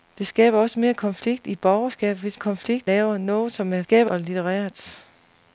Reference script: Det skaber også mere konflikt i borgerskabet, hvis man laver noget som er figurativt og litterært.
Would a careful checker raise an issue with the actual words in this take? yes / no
yes